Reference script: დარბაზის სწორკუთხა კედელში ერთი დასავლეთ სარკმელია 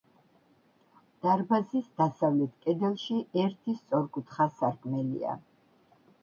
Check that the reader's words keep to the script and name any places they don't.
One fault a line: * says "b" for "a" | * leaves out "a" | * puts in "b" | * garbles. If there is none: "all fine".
* says "დასავლეთ" for "სწორკუთხა"
* says "სწორკუთხა" for "დასავლეთ"